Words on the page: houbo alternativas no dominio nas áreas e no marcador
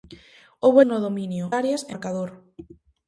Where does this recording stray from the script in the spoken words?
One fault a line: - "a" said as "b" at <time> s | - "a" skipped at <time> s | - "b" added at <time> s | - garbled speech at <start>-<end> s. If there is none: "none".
- "alternativas" skipped at 0.8 s
- "nas" skipped at 1.4 s
- "no" skipped at 1.9 s